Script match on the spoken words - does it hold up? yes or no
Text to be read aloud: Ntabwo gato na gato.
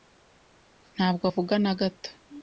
no